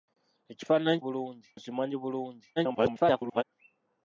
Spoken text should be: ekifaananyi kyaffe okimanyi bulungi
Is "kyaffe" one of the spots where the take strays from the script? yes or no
yes